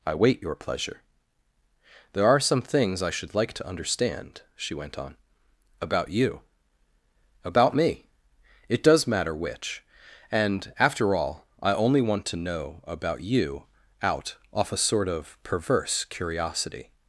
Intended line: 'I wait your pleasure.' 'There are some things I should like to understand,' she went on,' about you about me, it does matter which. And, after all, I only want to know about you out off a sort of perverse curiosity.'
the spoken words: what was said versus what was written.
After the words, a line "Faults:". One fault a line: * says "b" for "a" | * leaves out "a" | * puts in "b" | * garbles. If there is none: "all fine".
'I wait your pleasure.' 'There are some things I should like to understand,' she went on,' about you about me, it does matter which. And, after all, I only want to know about you out off a sort of perverse curiosity.'
Faults:
all fine